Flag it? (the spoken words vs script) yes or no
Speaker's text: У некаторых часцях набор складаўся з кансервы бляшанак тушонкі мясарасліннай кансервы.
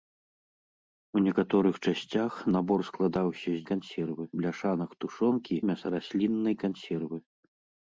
no